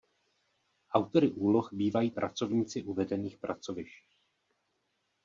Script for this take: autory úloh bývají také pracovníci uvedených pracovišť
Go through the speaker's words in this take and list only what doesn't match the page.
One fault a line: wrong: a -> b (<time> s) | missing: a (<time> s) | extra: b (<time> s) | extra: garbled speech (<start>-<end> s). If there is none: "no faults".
missing: také (2.1 s)